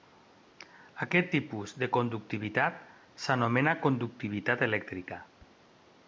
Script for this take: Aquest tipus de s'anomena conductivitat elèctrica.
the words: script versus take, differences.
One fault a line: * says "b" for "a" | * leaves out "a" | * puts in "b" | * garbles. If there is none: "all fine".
* puts in "conductivitat"